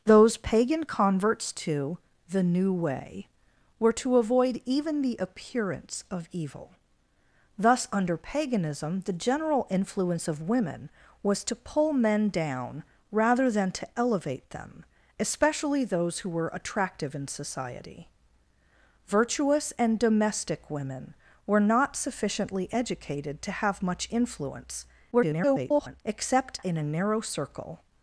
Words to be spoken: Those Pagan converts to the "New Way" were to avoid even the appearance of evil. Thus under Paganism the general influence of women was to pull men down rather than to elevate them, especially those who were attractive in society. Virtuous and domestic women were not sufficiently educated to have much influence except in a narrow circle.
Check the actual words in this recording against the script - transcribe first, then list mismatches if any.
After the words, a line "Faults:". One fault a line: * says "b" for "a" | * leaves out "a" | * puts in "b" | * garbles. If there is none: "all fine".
Those Pagan converts to the "New Way" were to avoid even the appearance of evil. Thus under Paganism the general influence of women was to pull men down rather than to elevate them, especially those who were attractive in society. Virtuous and domestic women were not sufficiently educated to have much influence [garbled] except in a narrow circle.
Faults:
* garbles